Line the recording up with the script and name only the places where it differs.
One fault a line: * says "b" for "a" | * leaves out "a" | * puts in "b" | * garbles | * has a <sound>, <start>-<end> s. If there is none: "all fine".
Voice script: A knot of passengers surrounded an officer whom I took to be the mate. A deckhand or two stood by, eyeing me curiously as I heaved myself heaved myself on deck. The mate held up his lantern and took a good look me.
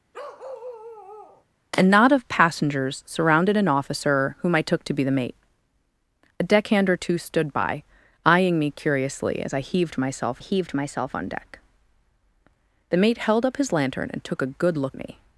* has a bark, 0.1-1.4 s